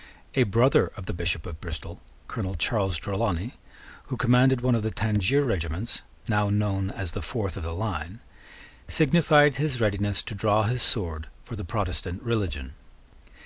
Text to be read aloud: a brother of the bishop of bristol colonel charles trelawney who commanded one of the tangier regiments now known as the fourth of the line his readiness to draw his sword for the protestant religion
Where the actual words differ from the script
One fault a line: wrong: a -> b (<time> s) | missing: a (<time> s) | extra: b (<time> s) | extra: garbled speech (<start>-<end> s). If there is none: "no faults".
extra: signified (8.9 s)